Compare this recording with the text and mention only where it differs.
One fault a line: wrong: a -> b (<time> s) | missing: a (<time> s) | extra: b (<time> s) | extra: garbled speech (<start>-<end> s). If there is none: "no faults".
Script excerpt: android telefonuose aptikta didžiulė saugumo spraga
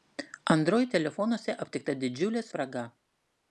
missing: saugumo (2.5 s)